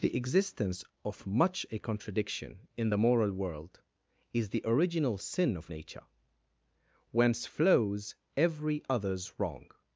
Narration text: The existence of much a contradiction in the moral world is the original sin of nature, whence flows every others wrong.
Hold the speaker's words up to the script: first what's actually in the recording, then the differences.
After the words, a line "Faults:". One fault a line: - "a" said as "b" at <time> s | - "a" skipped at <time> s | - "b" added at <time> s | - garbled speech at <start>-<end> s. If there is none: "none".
The existence of much a contradiction in the moral world is the original sin of nature, whence flows every others wrong.
Faults:
none